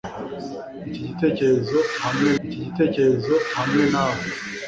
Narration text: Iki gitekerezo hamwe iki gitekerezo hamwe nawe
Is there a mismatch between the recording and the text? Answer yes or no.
no